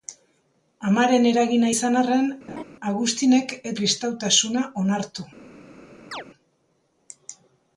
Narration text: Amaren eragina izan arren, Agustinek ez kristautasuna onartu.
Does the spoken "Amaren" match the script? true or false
true